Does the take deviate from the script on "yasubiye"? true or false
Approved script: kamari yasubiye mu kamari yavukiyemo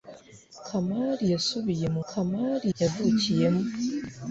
false